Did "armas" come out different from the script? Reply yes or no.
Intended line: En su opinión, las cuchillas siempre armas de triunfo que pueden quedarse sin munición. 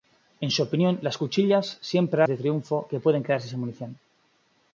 yes